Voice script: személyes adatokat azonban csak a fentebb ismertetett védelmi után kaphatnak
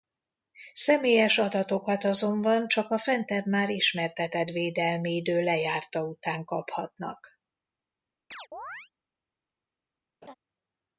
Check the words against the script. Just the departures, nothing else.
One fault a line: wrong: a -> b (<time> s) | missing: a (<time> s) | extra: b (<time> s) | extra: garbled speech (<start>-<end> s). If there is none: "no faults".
extra: már (3.5 s)
extra: idő lejárta (5.1 s)